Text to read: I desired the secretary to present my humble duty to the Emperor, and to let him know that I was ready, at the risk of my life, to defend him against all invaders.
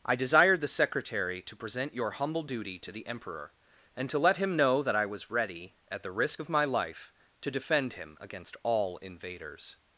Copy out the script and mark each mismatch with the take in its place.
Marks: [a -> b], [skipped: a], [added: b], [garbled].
I desired the secretary to present [my -> your] humble duty to the Emperor, and to let him know that I was ready, at the risk of my life, to defend him against all invaders.